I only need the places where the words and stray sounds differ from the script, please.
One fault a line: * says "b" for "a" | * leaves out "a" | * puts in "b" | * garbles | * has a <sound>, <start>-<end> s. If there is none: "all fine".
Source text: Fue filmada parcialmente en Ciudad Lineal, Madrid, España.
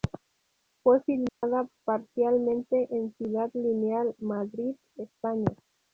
* has a dropout, 1.3-1.4 s